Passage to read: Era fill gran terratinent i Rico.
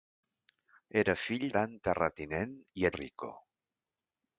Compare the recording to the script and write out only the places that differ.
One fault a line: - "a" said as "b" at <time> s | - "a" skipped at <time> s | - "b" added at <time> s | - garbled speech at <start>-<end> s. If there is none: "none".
none